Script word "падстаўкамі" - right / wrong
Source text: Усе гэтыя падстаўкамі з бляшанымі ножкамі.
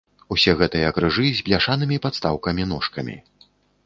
wrong